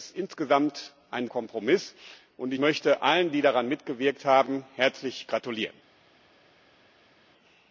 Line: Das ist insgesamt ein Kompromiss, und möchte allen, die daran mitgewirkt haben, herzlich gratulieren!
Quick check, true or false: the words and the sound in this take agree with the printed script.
true